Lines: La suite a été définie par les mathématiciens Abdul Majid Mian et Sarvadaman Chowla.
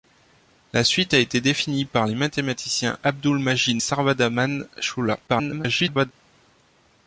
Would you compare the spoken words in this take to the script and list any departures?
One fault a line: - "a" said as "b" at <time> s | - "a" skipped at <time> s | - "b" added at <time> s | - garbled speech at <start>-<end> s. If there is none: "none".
- "Mian et" skipped at 3.8 s
- garbled speech at 5.3-6.1 s